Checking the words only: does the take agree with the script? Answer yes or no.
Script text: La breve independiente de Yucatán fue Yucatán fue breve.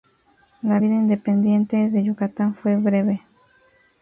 no